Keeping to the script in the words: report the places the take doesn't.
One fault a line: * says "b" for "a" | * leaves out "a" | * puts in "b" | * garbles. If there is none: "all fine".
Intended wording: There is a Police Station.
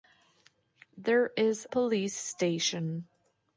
* leaves out "a"